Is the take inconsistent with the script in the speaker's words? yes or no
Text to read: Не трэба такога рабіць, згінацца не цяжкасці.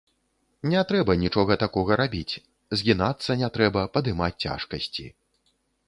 yes